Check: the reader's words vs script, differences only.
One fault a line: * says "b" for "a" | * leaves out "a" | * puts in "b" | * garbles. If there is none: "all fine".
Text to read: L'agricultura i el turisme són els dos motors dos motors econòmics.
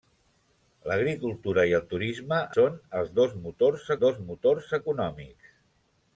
all fine